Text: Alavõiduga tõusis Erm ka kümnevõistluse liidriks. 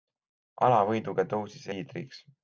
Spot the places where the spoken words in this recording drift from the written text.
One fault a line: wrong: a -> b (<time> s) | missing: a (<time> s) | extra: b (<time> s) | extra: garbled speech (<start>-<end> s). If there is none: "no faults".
missing: Erm ka kümnevõistluse (1.7 s)